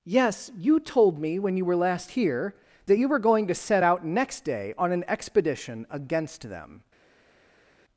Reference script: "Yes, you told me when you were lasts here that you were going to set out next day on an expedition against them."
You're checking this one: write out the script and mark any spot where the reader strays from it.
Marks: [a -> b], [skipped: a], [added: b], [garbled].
"Yes, you told me when you were [lasts -> last] here that you were going to set out next day on an expedition against them."